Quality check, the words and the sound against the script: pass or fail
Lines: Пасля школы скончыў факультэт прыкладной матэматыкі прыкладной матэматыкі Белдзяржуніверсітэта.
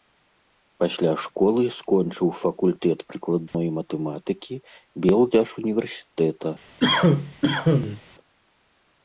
fail